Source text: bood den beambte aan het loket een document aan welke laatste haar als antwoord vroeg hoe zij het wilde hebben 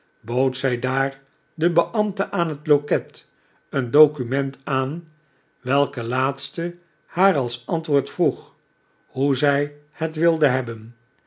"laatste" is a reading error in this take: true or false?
false